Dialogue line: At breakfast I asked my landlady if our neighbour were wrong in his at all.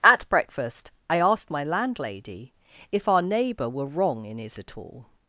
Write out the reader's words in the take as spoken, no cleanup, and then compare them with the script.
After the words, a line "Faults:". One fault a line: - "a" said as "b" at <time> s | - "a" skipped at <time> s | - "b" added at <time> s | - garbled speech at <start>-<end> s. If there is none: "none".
At breakfast I asked my landlady if our neighbour were wrong in his at all.
Faults:
none